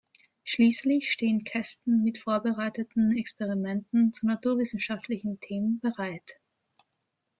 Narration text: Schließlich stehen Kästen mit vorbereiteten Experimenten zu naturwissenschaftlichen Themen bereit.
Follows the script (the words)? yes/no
yes